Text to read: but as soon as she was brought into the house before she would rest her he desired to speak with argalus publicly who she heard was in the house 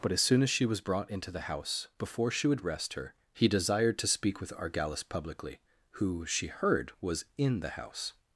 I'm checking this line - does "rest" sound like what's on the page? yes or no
yes